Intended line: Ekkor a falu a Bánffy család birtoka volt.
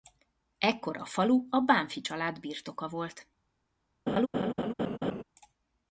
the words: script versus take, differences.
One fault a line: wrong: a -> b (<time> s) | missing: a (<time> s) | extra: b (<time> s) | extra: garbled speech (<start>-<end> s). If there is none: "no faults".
no faults